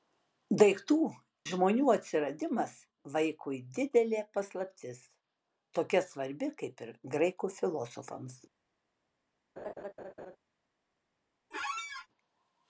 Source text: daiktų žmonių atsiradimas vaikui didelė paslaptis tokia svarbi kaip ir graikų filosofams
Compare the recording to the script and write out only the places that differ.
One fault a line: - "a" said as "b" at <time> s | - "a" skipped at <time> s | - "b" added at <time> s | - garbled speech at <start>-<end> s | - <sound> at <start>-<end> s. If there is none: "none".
- laugh at 9.6-10.4 s
- squeak at 11.5-12.1 s